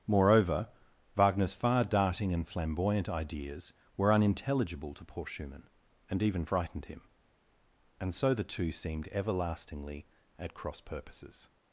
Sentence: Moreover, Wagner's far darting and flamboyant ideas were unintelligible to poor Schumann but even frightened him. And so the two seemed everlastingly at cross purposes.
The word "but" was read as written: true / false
false